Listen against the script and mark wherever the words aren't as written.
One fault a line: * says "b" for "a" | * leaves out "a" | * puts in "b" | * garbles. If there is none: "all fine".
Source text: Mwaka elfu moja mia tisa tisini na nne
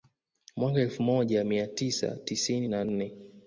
all fine